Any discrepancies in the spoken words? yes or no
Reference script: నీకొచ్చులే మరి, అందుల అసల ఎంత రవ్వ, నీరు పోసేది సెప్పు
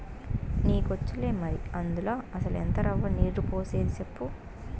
no